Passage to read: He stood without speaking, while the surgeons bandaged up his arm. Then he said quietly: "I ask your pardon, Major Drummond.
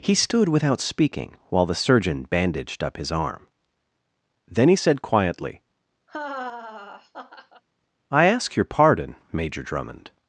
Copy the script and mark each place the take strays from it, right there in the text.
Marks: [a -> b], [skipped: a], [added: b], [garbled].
He stood without speaking, while the [surgeons -> surgeon] bandaged up his arm. Then he said quietly: "I ask your pardon, Major Drummond.